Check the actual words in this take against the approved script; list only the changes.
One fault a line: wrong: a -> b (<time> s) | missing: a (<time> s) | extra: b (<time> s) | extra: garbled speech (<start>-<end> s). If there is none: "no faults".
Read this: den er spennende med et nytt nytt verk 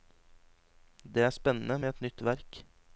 wrong: den -> det (1.0 s)
missing: nytt (2.2 s)